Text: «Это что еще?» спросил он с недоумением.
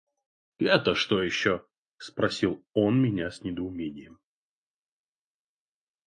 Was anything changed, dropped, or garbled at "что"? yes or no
no